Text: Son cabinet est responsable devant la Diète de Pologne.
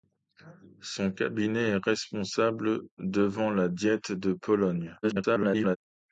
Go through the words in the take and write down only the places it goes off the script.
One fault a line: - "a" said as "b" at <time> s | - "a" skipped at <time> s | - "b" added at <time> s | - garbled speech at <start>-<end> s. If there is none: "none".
- garbled speech at 5.0-5.8 s